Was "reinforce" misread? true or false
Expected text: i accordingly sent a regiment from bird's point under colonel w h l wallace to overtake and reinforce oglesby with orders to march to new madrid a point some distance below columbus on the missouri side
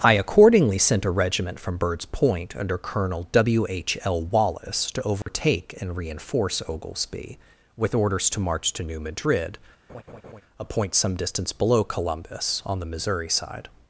false